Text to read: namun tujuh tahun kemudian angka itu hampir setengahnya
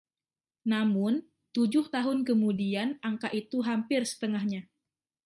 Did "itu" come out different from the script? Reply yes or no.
no